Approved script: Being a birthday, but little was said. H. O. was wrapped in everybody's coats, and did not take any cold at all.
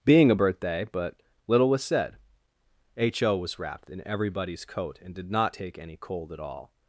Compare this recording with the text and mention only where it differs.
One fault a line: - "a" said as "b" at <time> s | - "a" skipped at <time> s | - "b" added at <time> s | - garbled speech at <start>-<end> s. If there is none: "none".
- "coats" said as "coat" at 4.7 s